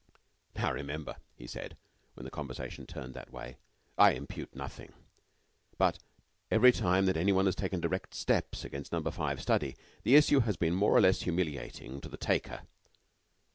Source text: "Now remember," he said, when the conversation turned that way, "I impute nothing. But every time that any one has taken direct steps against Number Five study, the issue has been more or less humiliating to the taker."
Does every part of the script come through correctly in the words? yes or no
yes